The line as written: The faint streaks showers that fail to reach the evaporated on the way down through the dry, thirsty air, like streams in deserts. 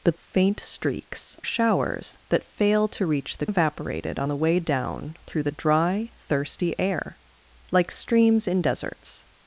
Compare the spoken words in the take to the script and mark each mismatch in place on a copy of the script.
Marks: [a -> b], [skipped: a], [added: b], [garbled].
The faint streaks showers that fail to reach the evaporated on the way down through the dry, thirsty air, like streams in deserts.